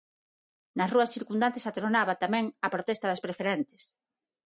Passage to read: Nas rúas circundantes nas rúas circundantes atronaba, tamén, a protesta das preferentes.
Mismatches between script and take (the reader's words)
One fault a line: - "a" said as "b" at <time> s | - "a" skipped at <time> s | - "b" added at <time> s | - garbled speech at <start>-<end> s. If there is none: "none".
- "nas rúas circundantes" skipped at 1.7 s